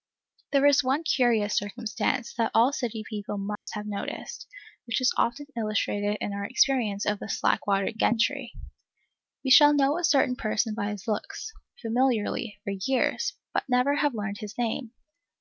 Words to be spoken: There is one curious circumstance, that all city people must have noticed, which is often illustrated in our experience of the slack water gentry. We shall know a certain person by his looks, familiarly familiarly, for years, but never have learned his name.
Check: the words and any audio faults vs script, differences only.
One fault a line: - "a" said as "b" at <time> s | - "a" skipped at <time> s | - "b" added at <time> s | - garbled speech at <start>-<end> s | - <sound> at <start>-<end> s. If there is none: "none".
- dropout at 3.6-3.7 s
- "familiarly" skipped at 12.6 s